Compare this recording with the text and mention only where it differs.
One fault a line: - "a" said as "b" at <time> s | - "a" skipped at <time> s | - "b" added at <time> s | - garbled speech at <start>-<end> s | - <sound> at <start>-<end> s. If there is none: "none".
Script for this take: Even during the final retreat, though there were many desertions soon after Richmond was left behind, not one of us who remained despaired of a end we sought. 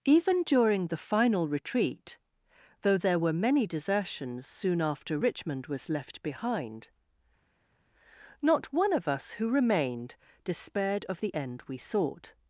- "a" said as "the" at 11.2 s